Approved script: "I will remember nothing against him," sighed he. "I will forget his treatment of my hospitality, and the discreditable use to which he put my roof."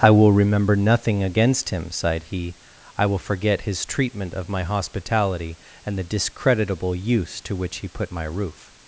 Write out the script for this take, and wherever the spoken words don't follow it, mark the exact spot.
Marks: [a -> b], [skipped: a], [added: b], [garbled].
"I will remember nothing against him," sighed he. "I will forget his treatment of my hospitality, and the discreditable use to which he put my roof."